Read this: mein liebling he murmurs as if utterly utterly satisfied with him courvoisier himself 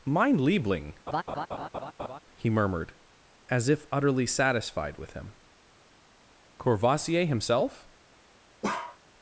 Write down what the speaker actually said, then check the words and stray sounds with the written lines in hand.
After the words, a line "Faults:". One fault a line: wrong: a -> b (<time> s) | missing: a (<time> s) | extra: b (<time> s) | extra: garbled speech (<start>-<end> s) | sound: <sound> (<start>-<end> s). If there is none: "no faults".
mein liebling he murmured as if utterly satisfied with him courvoisier himself
Faults:
sound: laugh (1.1-2.2 s)
wrong: murmurs -> murmured (2.5 s)
missing: utterly (4.3 s)
sound: bark (8.6-9.0 s)